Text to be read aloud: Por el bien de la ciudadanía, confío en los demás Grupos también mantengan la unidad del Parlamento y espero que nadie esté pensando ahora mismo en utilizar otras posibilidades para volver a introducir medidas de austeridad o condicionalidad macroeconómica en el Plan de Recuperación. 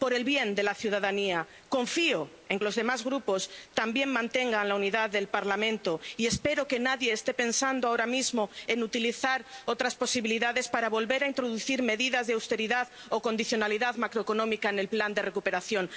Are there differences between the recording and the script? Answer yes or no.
no